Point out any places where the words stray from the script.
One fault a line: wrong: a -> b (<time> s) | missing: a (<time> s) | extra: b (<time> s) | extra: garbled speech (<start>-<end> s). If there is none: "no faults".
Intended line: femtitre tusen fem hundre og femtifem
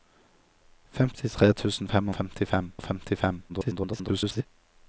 wrong: hundre -> femtifem (2.2 s)
extra: garbled speech (3.5-4.5 s)